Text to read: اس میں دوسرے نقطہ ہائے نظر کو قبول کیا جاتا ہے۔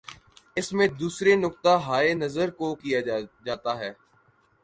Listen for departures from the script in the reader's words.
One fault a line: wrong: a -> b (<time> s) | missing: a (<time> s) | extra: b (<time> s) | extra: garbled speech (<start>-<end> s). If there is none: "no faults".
missing: قبول (2.7 s)